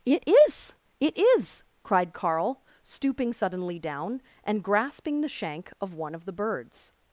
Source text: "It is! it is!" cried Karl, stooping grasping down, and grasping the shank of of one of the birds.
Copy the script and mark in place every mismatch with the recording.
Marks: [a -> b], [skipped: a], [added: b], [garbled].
"It is! it is!" cried Karl, stooping [grasping -> suddenly] down, and grasping the shank of [skipped: of] one of the birds.